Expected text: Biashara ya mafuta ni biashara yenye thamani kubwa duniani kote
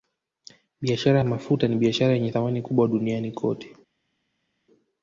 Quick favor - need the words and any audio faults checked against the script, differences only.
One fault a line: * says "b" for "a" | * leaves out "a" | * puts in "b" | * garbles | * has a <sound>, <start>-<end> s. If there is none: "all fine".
all fine